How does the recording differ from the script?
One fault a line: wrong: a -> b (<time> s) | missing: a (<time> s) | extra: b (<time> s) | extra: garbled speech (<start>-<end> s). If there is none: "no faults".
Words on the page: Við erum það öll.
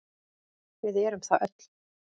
no faults